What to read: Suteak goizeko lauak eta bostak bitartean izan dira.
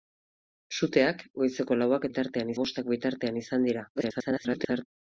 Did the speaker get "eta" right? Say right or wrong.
wrong